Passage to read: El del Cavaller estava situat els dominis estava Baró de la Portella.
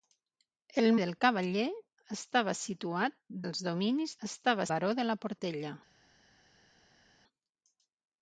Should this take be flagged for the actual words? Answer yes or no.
no